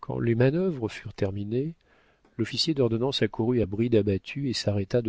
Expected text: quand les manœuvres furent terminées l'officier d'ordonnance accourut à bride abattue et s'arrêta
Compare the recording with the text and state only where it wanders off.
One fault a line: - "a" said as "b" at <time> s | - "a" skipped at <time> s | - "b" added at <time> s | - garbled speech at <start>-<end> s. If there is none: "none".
none